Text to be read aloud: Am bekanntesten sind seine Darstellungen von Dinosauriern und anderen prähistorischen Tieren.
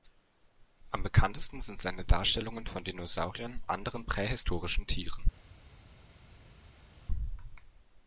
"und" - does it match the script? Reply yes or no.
no